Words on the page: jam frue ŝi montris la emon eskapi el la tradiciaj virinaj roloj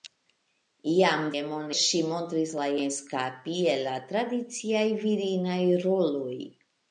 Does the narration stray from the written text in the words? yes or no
yes